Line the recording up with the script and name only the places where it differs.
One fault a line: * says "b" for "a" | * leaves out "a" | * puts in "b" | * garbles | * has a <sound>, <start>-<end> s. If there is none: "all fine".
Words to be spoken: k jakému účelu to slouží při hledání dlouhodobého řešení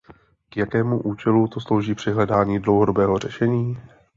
all fine